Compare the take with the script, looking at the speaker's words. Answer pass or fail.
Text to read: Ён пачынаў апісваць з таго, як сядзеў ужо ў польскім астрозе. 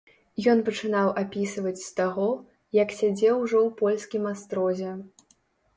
pass